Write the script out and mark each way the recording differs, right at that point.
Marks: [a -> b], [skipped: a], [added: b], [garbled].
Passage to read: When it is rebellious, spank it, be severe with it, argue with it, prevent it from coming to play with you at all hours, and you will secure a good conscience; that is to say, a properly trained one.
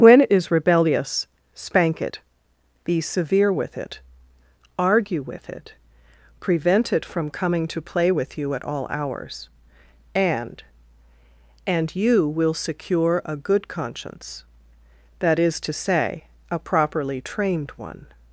When it is rebellious, spank it, be severe with it, argue with it, prevent it from coming to play with you at all hours, and [added: and] you will secure a good conscience; that is to say, a properly trained one.